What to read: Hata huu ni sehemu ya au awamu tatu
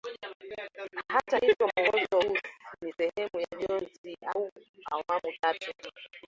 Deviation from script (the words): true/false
true